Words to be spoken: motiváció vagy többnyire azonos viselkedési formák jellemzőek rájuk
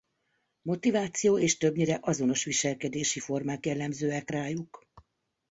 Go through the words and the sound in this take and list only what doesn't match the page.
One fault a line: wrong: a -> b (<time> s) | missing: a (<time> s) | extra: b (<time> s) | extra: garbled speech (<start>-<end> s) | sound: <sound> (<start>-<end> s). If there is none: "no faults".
wrong: vagy -> és (1.4 s)